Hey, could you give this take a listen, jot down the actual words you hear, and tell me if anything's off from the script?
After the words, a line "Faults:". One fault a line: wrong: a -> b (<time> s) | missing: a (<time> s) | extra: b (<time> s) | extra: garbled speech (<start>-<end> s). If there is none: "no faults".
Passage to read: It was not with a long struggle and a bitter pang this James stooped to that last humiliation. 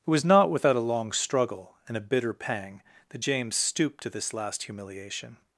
It was not without a long struggle and a bitter pang that James stooped to this last humiliation.
Faults:
wrong: with -> without (0.5 s)
wrong: this -> that (3.1 s)
wrong: that -> this (4.1 s)